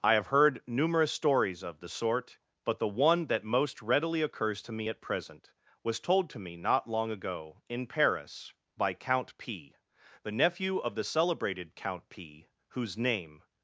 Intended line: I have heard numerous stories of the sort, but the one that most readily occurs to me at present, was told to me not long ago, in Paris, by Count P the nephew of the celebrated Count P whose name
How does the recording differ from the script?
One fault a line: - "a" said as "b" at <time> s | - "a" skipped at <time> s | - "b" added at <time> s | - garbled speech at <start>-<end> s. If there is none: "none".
none